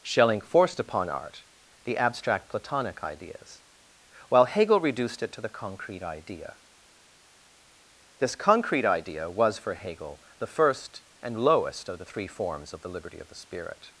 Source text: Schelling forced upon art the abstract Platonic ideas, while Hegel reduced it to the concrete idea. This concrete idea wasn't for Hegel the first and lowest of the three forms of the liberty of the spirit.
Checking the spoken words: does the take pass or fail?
fail